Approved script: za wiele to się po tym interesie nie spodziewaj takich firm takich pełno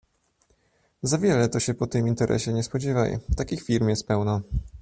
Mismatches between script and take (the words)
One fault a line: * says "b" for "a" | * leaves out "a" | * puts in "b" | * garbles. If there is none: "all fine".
* says "jest" for "takich"